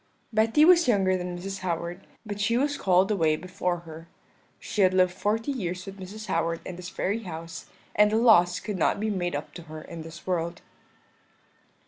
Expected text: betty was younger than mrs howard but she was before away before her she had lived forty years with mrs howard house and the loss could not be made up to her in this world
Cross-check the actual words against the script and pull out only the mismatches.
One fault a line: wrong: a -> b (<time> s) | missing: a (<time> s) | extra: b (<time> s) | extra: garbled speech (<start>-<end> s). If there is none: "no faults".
wrong: before -> called (2.8 s)
extra: in this very (6.6 s)